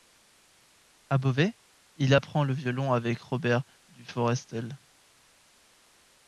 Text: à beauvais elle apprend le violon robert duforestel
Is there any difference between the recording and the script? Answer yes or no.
yes